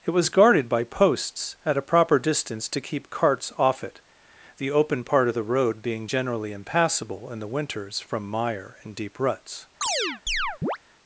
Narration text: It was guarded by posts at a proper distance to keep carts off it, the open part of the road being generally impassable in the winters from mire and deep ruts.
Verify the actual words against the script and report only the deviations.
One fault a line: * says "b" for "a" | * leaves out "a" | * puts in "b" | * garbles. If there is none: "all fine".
all fine